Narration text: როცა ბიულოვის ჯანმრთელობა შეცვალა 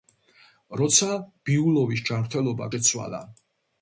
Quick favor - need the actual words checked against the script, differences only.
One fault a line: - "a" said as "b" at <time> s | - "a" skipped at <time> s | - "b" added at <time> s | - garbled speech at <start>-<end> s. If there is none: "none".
none